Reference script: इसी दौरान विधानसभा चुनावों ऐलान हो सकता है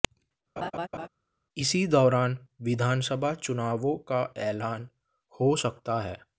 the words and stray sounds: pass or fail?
fail